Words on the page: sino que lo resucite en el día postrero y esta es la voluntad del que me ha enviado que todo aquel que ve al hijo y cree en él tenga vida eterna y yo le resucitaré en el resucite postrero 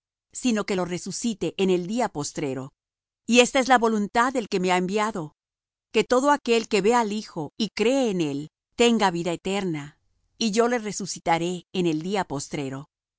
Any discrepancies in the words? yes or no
yes